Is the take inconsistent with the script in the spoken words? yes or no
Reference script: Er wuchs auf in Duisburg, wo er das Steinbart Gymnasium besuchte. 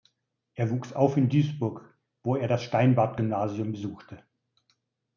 no